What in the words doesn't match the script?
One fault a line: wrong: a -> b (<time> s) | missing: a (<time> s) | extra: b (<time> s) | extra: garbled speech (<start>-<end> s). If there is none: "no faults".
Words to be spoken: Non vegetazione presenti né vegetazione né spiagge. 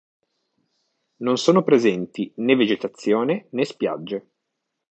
wrong: vegetazione -> sono (1.4 s)